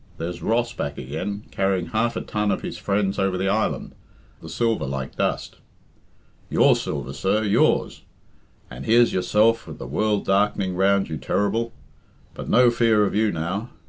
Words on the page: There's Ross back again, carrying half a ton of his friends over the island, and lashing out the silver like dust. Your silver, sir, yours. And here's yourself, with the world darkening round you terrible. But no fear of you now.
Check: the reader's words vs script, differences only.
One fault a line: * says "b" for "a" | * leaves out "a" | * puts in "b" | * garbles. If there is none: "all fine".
* leaves out "and lashing out"